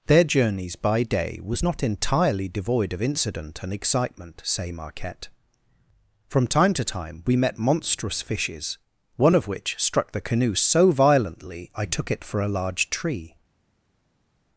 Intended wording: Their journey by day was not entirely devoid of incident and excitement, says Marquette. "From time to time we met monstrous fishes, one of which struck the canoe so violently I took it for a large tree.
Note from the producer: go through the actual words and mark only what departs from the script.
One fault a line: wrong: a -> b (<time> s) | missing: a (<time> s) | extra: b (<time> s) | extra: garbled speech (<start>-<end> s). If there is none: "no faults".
wrong: journey -> journeys (0.2 s)
wrong: says -> say (4.5 s)